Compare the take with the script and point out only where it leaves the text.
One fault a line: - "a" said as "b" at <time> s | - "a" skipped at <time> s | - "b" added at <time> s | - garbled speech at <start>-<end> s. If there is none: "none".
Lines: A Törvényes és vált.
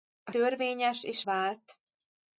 none